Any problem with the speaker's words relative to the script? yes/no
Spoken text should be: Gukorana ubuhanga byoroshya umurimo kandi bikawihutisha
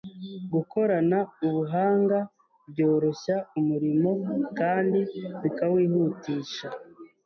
no